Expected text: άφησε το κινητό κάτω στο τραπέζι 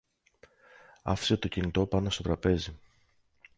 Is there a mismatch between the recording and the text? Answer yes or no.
yes